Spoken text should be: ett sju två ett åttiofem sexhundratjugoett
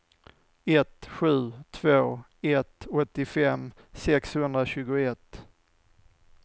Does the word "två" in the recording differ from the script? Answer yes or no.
no